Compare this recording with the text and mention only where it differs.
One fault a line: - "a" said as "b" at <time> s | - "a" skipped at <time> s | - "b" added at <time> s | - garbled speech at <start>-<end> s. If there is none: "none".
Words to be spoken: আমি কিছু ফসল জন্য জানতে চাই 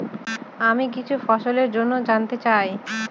none